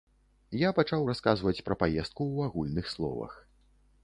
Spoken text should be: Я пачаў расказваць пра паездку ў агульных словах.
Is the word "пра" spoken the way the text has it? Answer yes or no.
yes